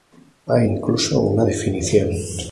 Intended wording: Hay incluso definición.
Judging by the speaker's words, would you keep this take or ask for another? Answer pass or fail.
fail